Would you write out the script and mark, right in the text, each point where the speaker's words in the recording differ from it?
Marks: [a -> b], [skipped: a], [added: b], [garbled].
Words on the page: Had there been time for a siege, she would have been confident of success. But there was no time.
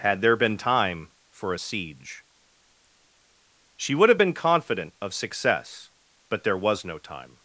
Had there been time for a siege, she would have been confident of success. But there was no time.